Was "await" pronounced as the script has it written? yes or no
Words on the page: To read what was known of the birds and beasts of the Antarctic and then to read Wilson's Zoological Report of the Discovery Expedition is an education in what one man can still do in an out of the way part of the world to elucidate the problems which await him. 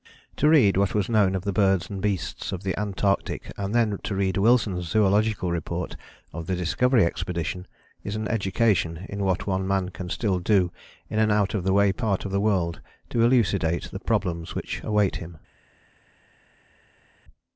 yes